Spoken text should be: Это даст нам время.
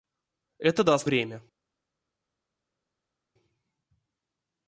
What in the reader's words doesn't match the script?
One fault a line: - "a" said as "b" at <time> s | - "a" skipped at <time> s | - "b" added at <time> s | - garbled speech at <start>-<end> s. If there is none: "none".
- "нам" skipped at 1.1 s